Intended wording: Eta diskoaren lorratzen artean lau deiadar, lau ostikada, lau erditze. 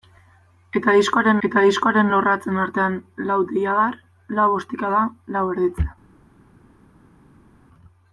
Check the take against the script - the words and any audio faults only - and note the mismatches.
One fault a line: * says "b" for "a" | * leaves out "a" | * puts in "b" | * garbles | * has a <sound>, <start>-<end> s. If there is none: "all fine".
* puts in "eta diskoaren"